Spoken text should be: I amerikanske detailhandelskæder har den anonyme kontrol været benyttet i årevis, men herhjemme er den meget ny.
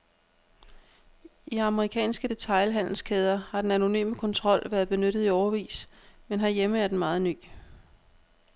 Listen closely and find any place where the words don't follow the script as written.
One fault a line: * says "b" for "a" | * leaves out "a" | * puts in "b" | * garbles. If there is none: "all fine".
all fine